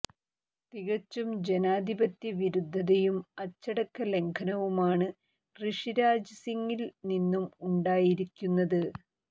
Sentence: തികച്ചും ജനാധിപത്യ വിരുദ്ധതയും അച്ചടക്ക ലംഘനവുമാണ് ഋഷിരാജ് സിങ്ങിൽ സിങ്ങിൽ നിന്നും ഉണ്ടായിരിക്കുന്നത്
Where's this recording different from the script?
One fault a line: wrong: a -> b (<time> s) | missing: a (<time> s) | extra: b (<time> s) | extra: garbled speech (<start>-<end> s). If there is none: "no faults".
missing: സിങ്ങിൽ (6.8 s)